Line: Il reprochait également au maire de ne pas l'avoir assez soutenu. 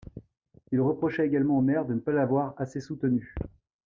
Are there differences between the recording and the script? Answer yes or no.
no